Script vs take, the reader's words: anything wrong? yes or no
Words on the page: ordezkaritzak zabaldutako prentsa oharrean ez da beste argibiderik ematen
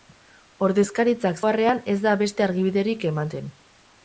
yes